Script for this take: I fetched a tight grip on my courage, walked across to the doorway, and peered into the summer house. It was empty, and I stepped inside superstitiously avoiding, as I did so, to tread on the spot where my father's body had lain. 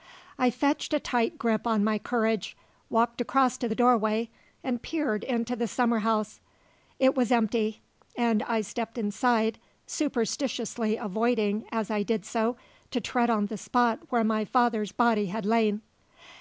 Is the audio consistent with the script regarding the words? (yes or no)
yes